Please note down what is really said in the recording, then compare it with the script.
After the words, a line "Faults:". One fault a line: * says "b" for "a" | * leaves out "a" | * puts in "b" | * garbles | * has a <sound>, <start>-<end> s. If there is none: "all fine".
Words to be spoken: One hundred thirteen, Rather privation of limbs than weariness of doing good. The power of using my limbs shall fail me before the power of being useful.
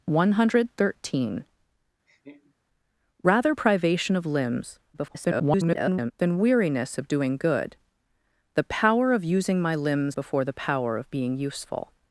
One hundred thirteen, Rather privation of limbs [garbled] than weariness of doing good. The power of using my limbs before the power of being useful.
Faults:
* has a laugh, 2.1-2.5 s
* garbles
* leaves out "shall fail me"